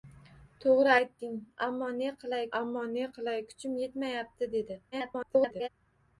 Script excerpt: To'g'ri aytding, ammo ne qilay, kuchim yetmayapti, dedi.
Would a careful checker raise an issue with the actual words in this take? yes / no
yes